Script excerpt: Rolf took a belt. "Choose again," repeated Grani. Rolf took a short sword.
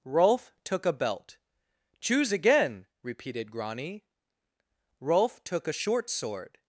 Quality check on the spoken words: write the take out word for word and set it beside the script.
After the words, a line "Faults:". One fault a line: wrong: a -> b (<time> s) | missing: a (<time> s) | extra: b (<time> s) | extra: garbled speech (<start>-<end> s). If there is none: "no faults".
Rolf took a belt. "Choose again," repeated Grani. Rolf took a short sword.
Faults:
no faults